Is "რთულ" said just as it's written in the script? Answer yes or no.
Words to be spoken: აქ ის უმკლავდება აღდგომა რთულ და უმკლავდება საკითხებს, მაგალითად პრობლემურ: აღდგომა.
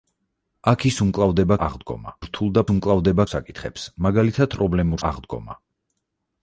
yes